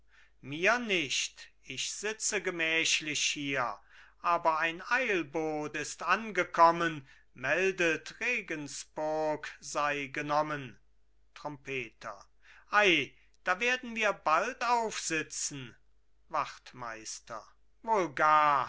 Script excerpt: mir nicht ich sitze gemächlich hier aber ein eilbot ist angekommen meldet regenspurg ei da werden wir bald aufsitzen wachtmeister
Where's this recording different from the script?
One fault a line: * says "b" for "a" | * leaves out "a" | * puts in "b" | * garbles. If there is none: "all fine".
* puts in "sei genommen trompeter"